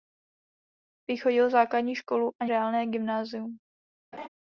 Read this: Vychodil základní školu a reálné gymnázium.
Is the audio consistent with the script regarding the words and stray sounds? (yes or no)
no